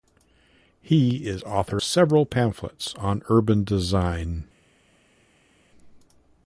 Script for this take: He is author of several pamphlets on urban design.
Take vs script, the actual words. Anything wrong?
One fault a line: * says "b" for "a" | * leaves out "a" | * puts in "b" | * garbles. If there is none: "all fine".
* leaves out "of"